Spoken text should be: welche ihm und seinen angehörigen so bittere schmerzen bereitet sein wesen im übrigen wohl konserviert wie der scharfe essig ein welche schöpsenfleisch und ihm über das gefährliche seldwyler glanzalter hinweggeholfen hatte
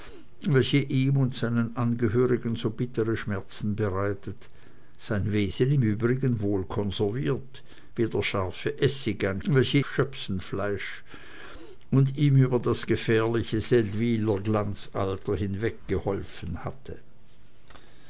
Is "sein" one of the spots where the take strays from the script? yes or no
no